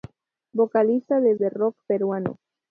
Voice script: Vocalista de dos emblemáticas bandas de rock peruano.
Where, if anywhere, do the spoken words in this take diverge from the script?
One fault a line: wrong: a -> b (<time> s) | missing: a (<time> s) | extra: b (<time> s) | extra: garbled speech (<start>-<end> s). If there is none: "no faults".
missing: dos emblemáticas bandas (1.4 s)